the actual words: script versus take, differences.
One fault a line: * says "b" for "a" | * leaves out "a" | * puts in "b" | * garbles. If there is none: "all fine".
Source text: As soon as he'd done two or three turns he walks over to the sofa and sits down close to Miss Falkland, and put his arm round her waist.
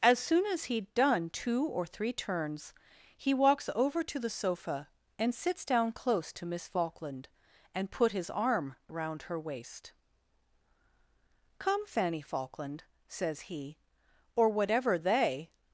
* puts in "Come Fanny Falkland says he or whatever they"